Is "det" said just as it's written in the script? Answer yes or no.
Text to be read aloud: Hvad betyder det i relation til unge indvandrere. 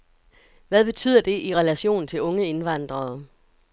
yes